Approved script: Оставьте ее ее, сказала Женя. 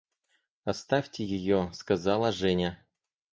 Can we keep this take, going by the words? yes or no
no